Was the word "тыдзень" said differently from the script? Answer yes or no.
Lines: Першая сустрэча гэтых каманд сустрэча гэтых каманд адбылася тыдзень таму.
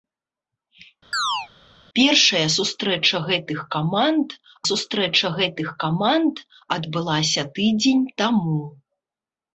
no